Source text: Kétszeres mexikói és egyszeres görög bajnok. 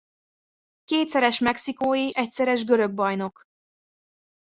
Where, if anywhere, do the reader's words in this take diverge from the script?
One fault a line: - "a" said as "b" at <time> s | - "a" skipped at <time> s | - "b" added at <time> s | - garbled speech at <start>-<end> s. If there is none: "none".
- "és" skipped at 2.1 s